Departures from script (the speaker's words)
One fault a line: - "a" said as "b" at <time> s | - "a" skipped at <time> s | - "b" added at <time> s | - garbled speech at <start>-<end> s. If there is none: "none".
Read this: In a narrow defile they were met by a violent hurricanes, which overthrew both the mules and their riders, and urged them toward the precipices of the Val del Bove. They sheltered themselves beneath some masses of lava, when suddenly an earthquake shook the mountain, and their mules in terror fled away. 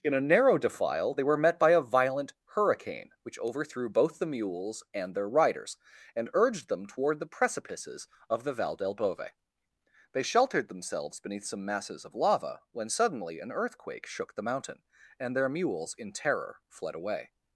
- "hurricanes" said as "hurricane" at 2.5 s